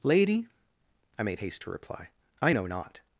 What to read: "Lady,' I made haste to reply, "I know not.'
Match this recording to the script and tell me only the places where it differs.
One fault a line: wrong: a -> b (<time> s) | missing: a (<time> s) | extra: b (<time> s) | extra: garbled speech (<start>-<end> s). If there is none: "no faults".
no faults